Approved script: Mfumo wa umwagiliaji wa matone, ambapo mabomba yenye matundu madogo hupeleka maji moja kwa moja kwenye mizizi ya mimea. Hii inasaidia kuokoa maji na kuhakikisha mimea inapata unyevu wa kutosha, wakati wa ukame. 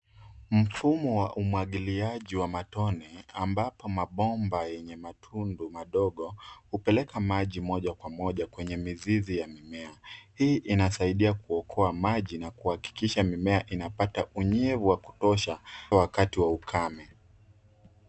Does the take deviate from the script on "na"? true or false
false